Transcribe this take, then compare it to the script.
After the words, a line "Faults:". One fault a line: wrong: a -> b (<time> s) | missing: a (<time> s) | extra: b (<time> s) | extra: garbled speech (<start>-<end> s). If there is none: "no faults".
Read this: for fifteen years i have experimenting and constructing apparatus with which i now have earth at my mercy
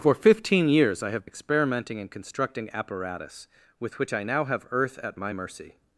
for fifteen years i have experimenting and constructing apparatus with which i now have earth at my mercy
Faults:
no faults